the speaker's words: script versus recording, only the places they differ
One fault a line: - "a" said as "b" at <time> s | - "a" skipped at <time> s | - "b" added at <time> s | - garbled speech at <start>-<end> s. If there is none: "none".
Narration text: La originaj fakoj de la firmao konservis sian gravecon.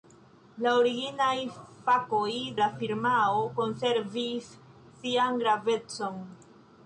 - "de" skipped at 2.3 s